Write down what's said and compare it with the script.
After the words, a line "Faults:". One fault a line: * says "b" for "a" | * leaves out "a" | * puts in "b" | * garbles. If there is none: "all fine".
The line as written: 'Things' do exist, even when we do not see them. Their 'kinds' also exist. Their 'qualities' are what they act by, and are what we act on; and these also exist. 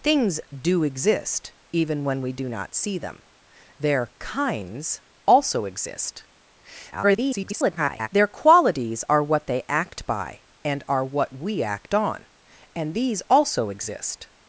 'Things' do exist, even when we do not see them. Their 'kinds' also exist. [garbled] Their 'qualities' are what they act by, and are what we act on; and these also exist.
Faults:
* garbles